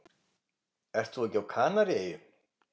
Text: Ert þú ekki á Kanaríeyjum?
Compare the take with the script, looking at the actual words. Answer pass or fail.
pass